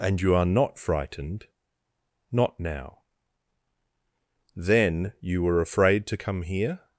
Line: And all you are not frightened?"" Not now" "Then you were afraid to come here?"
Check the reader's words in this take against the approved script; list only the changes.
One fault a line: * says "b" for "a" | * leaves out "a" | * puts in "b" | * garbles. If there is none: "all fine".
* leaves out "all"